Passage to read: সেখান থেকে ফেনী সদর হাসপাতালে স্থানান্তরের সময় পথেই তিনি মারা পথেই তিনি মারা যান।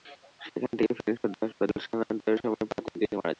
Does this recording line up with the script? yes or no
no